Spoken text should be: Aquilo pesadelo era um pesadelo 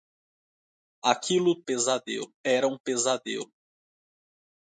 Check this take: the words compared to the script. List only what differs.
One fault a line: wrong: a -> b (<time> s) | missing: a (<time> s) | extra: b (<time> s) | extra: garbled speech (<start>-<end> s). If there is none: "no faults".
no faults